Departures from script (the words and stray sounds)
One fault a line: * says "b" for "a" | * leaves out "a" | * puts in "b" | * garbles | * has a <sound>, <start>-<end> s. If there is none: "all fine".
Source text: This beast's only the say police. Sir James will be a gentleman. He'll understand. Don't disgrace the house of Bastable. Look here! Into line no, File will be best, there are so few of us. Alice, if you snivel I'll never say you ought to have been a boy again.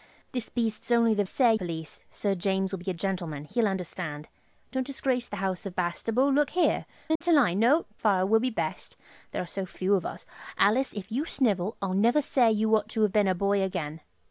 * has a dropout, 7.2-7.2 s